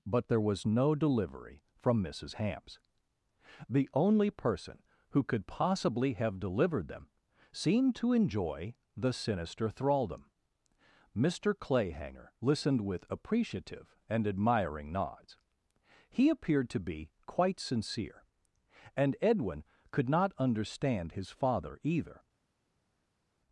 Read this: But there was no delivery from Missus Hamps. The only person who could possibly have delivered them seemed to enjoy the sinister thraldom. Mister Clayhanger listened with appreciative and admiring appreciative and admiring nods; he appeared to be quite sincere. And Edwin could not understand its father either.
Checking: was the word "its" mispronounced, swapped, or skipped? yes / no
yes